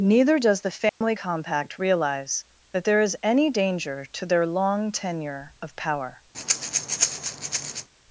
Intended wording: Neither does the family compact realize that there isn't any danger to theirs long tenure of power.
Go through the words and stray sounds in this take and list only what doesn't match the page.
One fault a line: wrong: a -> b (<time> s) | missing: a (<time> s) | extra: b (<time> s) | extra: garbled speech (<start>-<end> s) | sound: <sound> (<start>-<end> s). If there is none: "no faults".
sound: dropout (0.9-1.0 s)
wrong: isn't -> is (3.0 s)
wrong: theirs -> their (4.3 s)
sound: breath (6.3-7.9 s)